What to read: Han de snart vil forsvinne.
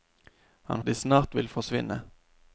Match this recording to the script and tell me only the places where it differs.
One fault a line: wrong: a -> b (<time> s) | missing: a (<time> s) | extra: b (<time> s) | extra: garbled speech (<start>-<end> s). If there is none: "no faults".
no faults